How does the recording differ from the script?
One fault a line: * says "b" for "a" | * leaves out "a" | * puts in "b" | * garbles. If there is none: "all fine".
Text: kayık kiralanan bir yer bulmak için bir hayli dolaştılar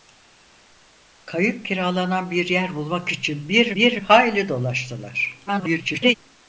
* puts in "bir"
* garbles